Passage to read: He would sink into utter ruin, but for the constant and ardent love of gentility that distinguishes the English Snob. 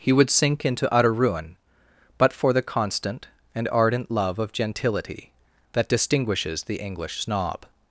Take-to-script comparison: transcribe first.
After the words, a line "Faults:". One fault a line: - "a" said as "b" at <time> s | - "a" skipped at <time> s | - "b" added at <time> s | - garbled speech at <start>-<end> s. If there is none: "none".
He would sink into utter ruin, but for the constant and ardent love of gentility that distinguishes the English Snob.
Faults:
none